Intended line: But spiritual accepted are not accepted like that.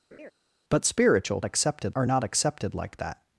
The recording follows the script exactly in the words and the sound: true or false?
false